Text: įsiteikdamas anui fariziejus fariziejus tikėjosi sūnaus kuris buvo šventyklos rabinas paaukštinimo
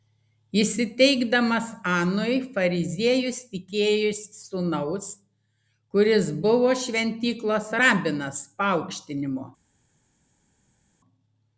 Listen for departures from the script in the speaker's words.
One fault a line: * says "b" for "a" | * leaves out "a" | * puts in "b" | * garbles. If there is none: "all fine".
* leaves out "fariziejus"